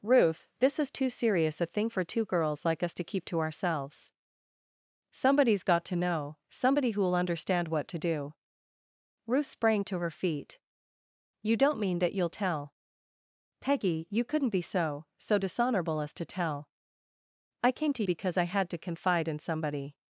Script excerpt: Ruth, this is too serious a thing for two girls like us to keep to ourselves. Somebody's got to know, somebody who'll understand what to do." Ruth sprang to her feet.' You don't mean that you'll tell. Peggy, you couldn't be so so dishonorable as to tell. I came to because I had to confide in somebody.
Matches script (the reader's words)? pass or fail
pass